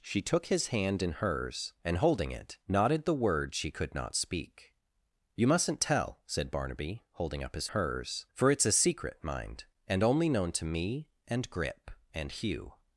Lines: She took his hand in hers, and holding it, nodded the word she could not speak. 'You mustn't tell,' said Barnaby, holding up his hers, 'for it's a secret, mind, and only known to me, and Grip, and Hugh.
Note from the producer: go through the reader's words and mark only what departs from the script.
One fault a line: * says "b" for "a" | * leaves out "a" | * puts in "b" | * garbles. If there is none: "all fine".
all fine